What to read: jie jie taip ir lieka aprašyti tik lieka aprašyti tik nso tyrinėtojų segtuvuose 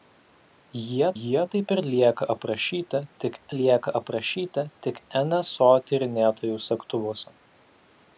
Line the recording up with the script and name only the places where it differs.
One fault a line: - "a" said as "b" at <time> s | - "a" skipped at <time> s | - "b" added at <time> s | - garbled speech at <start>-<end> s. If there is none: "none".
none